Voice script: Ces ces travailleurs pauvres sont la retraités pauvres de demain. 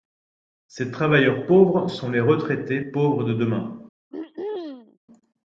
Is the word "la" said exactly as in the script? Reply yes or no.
no